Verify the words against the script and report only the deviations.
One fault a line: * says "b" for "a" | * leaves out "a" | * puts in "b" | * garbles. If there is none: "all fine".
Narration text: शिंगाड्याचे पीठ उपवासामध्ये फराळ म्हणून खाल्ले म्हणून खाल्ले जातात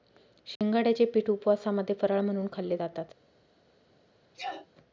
* leaves out "म्हणून खाल्ले"